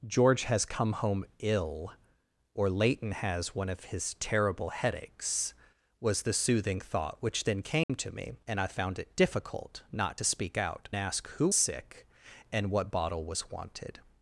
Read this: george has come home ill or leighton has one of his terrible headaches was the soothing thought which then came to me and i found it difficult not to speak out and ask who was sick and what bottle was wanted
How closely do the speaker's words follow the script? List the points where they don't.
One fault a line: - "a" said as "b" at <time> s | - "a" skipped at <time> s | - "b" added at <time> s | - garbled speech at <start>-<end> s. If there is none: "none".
- "and" skipped at 10.9 s
- "was" skipped at 11.5 s